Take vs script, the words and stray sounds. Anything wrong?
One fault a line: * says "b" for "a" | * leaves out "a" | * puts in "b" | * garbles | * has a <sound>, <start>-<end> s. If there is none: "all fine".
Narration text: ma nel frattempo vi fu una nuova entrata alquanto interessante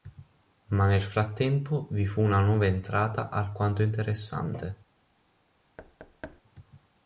* has a thud, 5.8-6.4 s